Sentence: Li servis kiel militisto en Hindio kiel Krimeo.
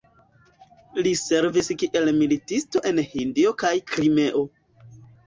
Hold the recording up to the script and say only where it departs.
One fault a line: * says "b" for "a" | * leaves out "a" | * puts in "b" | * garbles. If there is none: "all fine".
* says "kaj" for "kiel"